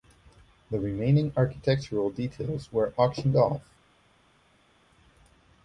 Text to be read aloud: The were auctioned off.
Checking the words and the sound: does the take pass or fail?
fail